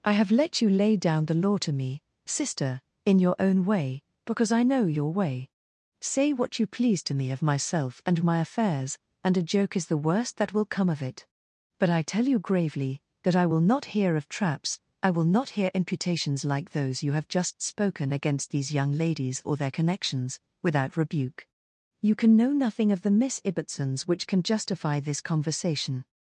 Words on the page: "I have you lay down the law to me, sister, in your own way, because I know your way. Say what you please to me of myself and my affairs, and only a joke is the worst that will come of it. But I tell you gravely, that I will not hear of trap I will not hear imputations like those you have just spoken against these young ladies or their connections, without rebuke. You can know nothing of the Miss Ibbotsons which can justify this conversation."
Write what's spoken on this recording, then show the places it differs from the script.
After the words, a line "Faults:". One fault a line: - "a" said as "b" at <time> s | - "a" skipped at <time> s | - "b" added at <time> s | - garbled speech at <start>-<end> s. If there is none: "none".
"I have let you lay down the law to me, sister, in your own way, because I know your way. Say what you please to me of myself and my affairs, and a joke is the worst that will come of it. But I tell you gravely, that I will not hear of traps I will not hear imputations like those you have just spoken against these young ladies or their connections, without rebuke. You can know nothing of the Miss Ibbotsons which can justify this conversation."
Faults:
- "let" added at 0.3 s
- "only" skipped at 9.4 s
- "trap" said as "traps" at 14.3 s